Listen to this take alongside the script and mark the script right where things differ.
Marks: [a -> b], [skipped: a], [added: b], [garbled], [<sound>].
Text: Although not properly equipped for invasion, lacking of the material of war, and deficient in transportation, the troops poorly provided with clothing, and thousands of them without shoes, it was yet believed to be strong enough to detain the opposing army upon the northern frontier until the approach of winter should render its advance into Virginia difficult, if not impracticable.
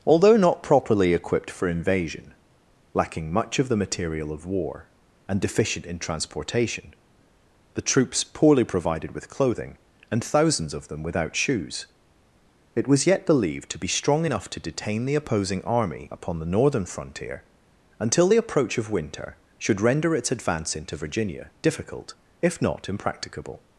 Although not properly equipped for invasion, lacking [added: much] of the material of war, and deficient in transportation, the troops poorly provided with clothing, and thousands of them without shoes, it was yet believed to be strong enough to detain the opposing army upon the northern frontier until the approach of winter should render its advance into Virginia difficult, if not impracticable.